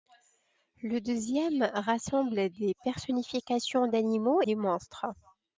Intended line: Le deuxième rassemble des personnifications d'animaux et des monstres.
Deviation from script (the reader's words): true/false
true